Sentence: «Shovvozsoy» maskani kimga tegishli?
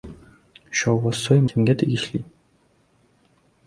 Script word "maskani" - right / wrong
wrong